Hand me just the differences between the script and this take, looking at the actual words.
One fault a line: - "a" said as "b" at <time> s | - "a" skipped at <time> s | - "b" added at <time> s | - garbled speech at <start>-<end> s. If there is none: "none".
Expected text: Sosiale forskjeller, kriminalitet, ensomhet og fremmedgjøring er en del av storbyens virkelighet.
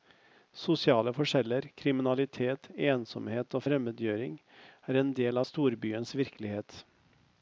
none